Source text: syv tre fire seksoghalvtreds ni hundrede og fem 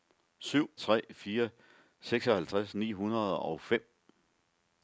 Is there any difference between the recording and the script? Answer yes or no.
no